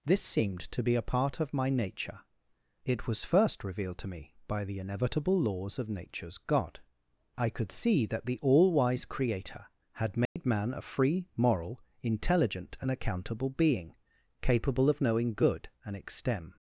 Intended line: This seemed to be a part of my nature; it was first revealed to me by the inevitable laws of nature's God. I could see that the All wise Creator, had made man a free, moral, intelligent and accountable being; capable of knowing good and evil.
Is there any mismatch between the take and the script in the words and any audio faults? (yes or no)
yes